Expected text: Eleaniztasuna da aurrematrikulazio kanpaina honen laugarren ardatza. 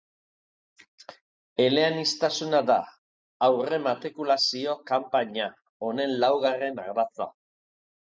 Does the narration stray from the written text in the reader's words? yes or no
no